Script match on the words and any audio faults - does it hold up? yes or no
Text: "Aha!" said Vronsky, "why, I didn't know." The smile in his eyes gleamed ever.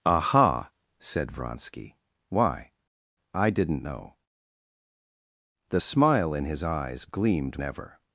yes